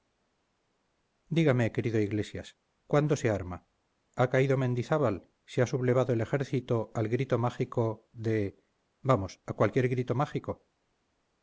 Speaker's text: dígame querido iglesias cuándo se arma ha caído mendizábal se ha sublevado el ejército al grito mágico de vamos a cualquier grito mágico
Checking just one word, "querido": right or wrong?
right